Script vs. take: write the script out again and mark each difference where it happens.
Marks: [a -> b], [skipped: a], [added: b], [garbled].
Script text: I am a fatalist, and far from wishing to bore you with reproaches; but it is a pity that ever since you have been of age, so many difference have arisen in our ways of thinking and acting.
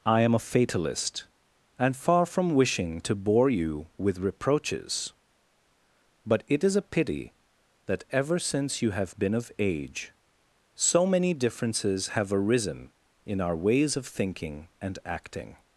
I am a fatalist, and far from wishing to bore you with reproaches; but it is a pity that ever since you have been of age, so many [difference -> differences] have arisen in our ways of thinking and acting.